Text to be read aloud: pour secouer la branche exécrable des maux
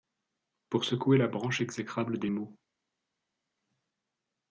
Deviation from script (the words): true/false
false